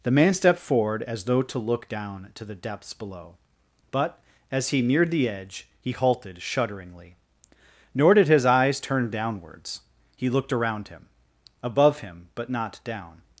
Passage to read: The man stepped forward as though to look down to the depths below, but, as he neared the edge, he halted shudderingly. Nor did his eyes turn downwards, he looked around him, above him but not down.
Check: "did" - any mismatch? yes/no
no